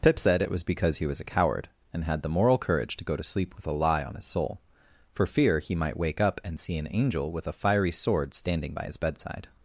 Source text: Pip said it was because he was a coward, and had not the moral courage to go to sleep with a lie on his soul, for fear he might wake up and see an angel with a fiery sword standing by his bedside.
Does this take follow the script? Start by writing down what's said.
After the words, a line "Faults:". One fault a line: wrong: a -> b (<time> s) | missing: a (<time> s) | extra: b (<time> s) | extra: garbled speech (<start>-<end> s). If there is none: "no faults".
Pip said it was because he was a coward, and had the moral courage to go to sleep with a lie on his soul, for fear he might wake up and see an angel with a fiery sword standing by his bedside.
Faults:
missing: not (2.2 s)